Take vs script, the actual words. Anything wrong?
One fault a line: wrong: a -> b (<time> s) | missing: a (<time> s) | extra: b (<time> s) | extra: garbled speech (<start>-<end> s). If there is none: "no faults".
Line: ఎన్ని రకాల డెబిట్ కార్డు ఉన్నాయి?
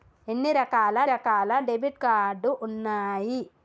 extra: రకాల (1.0 s)